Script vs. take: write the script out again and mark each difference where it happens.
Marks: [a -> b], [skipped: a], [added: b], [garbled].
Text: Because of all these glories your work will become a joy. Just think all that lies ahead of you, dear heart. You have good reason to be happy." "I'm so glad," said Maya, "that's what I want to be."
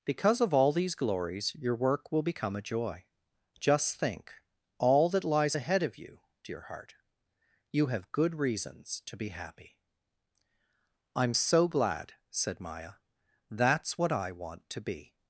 Because of all these glories your work will become a joy. Just think all that lies ahead of you, dear heart. You have good [reason -> reasons] to be happy." "I'm so glad," said Maya, "that's what I want to be."